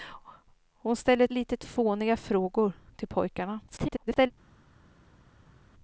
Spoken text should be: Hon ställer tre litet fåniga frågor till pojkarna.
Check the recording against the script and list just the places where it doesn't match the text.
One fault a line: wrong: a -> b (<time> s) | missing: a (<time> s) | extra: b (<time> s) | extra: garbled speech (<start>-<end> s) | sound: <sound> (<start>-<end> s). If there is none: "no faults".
missing: tre (1.3 s)
extra: garbled speech (3.7-4.3 s)